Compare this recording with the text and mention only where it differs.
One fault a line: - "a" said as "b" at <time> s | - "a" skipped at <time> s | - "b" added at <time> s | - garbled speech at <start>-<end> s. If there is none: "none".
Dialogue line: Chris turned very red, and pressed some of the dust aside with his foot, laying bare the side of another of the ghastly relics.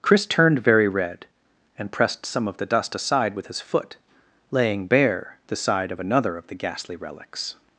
none